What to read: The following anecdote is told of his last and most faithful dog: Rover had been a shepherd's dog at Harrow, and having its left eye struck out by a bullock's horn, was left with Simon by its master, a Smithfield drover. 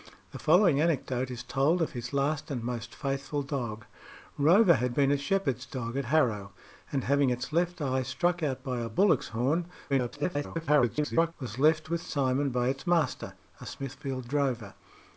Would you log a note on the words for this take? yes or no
yes